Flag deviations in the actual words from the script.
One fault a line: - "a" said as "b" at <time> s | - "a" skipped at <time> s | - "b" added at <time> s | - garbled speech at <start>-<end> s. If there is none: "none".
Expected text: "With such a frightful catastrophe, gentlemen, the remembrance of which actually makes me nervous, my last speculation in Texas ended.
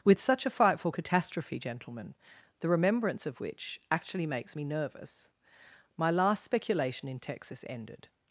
none